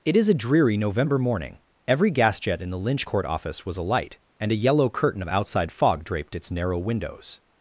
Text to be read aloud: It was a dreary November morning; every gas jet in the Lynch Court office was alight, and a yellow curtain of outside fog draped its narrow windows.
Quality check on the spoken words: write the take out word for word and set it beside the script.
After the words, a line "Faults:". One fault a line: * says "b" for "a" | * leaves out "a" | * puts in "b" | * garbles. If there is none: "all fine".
It is a dreary November morning; every gas jet in the Lynch Court office was alight, and a yellow curtain of outside fog draped its narrow windows.
Faults:
* says "is" for "was"